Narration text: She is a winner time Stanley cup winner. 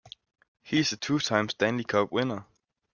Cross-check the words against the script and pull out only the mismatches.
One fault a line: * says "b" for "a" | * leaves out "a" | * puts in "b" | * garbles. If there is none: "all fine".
* says "He" for "She"
* says "two" for "winner"